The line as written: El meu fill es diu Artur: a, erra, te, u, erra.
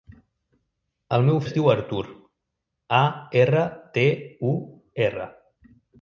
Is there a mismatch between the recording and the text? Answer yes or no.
yes